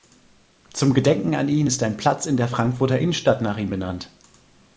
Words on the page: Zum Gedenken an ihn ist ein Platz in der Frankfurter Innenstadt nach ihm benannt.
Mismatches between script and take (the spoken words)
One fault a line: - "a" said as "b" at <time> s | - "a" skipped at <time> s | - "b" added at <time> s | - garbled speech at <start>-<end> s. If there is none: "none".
none